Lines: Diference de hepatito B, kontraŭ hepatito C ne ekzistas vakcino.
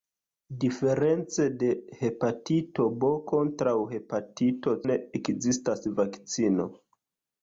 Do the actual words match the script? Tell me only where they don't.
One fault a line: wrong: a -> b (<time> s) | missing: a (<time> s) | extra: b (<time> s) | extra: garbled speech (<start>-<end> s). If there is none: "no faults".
missing: C (4.8 s)